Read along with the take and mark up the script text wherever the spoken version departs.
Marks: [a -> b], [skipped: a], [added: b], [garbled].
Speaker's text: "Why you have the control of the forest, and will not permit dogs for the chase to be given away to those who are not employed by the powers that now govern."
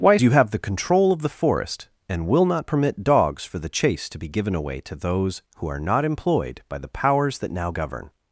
"Why you have the control of the forest, and will not permit dogs for the chase to be given away to those who are not employed by the powers that now govern."